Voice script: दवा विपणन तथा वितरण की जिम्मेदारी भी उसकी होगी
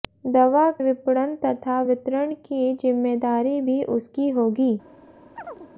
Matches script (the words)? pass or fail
pass